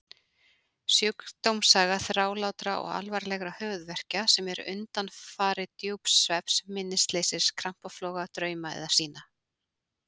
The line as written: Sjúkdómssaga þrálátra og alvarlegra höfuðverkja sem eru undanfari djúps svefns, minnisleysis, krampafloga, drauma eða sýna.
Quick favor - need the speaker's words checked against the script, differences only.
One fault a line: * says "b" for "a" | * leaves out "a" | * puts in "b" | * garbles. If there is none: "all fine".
all fine